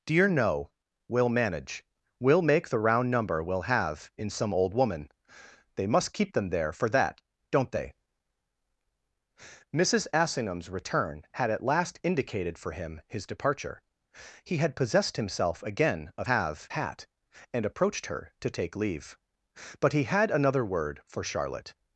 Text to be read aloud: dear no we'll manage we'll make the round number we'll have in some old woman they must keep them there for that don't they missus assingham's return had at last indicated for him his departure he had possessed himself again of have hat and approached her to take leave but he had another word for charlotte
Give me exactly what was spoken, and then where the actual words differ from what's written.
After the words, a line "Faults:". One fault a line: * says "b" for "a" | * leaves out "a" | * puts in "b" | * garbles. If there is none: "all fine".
dear no we'll manage we'll make the round number we'll have in some old woman they must keep them there for that don't they missus assingham's return had at last indicated for him his departure he had possessed himself again of have hat and approached her to take leave but he had another word for charlotte
Faults:
all fine